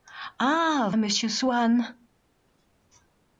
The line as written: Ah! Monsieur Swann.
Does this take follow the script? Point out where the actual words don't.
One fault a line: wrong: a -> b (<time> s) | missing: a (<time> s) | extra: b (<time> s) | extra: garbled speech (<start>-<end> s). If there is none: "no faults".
no faults